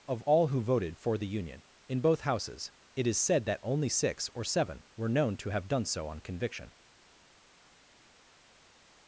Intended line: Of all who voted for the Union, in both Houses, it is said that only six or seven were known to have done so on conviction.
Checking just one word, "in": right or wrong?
right